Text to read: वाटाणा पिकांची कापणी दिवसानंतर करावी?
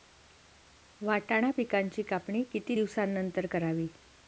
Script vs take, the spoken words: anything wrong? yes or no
yes